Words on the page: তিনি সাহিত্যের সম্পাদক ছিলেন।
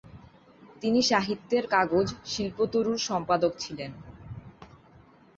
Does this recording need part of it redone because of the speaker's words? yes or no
yes